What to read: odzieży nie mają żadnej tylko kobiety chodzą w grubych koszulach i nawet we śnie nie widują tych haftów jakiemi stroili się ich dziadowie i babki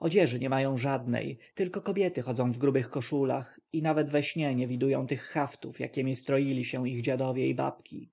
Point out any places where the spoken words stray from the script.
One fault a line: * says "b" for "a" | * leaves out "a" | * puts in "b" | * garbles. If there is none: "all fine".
all fine